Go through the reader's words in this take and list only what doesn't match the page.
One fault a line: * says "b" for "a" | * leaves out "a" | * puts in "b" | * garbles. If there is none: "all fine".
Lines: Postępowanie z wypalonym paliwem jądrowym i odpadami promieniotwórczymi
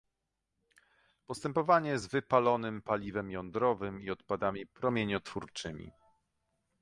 all fine